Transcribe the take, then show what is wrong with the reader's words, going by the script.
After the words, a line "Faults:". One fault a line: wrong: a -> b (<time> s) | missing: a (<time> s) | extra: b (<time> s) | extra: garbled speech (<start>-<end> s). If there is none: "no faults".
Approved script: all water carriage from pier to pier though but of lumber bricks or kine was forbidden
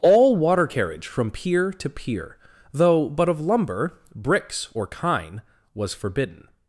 all water carriage from pier to pier though but of lumber bricks or kine was forbidden
Faults:
no faults